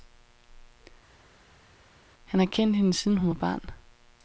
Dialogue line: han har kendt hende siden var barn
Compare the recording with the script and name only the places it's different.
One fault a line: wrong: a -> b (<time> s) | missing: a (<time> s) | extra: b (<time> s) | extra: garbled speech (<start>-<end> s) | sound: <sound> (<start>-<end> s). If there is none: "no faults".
extra: hun (3.2 s)